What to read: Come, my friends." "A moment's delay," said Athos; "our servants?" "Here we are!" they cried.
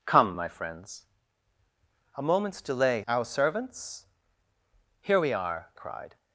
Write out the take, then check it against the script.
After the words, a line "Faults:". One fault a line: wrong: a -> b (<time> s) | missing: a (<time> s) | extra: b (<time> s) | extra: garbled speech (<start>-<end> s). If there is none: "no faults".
Come, my friends." "A moment's delay; "our servants?" "Here we are!" cried.
Faults:
missing: said Athos (3.0 s)
missing: they (5.7 s)